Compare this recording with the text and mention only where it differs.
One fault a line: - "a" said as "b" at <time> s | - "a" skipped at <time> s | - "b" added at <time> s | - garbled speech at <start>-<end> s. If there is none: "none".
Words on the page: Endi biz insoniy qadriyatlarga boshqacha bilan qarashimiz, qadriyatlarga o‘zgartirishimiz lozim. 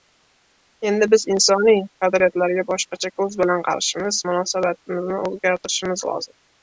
- "ko‘z" added at 3.2 s
- "qadriyatlarga" said as "munosabatimizni" at 4.3 s